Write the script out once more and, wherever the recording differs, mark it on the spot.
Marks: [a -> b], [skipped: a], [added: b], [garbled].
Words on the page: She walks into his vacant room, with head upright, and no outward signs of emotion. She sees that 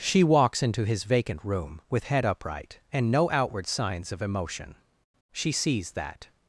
She walks into his vacant room, with head upright, and no outward signs of emotion. She sees that